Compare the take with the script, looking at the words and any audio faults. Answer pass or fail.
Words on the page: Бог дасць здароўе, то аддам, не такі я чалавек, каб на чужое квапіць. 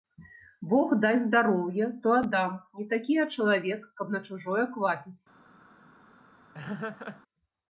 fail